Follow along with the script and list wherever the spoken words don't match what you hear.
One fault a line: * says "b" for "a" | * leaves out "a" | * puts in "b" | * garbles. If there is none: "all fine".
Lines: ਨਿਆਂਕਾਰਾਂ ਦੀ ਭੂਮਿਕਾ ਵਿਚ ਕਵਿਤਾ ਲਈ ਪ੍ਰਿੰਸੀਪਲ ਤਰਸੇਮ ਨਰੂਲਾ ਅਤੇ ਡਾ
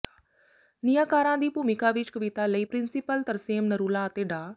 all fine